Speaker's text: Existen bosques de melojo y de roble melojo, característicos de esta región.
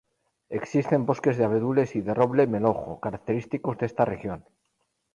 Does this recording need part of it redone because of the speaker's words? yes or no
yes